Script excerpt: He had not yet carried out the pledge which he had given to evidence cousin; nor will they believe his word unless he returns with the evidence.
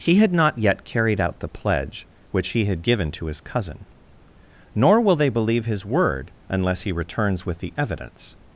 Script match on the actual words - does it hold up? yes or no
no